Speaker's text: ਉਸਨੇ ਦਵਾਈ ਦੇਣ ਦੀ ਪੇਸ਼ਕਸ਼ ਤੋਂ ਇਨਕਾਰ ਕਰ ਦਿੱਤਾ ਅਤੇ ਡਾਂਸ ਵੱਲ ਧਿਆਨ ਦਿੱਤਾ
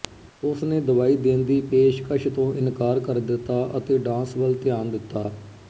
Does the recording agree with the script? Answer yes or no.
yes